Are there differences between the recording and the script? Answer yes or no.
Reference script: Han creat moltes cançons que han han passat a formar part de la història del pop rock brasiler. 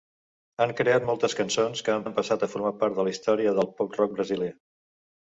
no